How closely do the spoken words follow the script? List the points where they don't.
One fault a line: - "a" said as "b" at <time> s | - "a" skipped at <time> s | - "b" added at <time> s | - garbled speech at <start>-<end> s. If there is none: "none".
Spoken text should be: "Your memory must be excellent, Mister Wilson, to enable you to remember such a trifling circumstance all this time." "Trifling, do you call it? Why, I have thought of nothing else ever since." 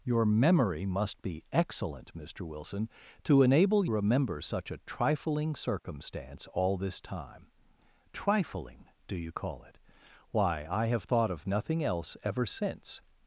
- "you to" skipped at 3.9 s